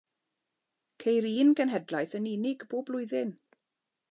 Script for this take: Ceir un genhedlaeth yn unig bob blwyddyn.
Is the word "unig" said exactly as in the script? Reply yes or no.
yes